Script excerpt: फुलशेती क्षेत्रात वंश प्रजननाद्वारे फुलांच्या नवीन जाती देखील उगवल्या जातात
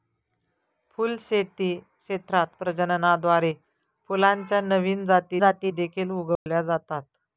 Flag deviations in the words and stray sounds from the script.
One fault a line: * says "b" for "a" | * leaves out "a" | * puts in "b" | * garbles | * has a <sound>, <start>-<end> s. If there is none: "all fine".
* leaves out "वंश"
* puts in "जाती"
* has a dropout, 6.4-6.5 s